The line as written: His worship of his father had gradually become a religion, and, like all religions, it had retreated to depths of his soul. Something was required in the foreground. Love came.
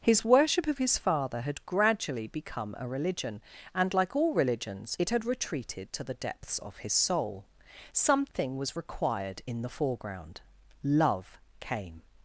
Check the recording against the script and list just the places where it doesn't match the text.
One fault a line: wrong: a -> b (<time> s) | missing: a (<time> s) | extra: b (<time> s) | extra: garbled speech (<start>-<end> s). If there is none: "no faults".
extra: the (6.0 s)